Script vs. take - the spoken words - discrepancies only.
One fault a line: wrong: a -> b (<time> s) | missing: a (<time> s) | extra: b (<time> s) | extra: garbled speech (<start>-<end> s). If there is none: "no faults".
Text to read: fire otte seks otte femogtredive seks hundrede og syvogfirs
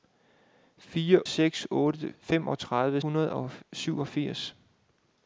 missing: otte (1.2 s)
missing: seks (3.0 s)